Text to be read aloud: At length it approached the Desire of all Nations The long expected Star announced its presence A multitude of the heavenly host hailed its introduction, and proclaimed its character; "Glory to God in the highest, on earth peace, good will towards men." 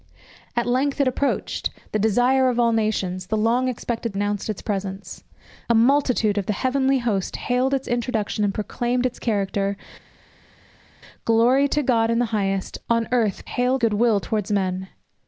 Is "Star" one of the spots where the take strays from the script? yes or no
yes